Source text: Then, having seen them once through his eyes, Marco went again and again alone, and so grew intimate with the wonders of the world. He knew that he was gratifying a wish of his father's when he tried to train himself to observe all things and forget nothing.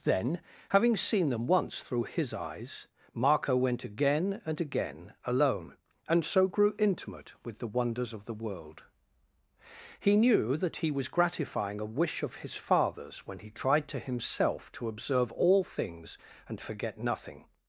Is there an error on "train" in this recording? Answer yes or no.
yes